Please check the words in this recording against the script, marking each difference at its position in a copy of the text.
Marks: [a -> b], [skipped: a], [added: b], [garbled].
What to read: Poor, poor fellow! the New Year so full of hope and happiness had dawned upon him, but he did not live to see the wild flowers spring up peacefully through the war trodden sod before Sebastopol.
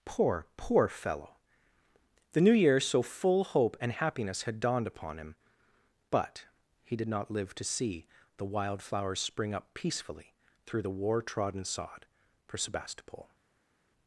Poor, poor fellow! the New Year so full [skipped: of] hope and happiness had dawned upon him, but he did not live to see the wild flowers spring up peacefully through the war trodden sod [before -> for] Sebastopol.